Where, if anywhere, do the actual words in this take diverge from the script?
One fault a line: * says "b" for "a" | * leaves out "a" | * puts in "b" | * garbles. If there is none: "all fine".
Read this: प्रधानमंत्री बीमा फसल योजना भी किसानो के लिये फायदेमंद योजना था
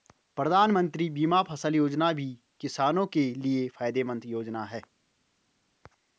* says "है" for "था"